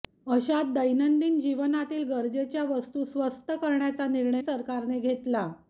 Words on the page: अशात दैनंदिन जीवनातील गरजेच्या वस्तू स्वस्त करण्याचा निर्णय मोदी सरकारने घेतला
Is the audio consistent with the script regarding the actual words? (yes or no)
no